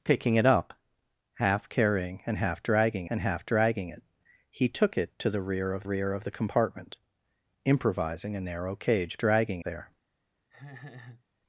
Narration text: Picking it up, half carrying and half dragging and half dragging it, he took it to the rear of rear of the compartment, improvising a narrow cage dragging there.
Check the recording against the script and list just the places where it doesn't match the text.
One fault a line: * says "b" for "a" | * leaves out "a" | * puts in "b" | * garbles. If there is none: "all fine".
all fine